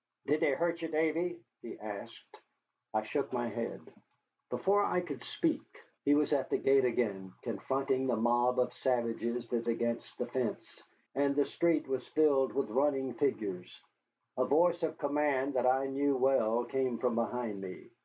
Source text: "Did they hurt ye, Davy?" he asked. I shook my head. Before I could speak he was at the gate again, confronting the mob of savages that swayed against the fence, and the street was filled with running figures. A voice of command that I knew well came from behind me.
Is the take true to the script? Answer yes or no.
no